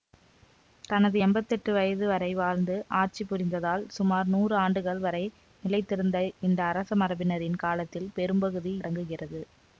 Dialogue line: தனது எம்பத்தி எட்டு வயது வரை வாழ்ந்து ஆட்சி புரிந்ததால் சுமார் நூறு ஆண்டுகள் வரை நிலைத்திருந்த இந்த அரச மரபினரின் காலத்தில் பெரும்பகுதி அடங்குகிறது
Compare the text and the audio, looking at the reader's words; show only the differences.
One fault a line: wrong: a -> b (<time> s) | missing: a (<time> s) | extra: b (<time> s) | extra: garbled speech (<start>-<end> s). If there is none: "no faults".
no faults